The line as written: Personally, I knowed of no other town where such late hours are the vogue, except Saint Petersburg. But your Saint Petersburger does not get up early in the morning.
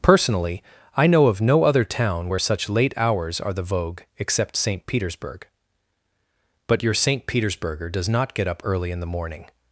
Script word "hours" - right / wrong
right